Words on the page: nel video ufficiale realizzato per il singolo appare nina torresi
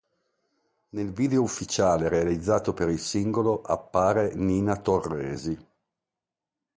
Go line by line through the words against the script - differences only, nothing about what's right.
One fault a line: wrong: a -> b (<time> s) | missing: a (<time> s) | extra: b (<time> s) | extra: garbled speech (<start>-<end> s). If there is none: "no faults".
no faults